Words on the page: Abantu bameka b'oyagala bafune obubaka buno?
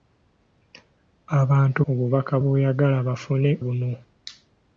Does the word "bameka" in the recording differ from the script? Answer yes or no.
yes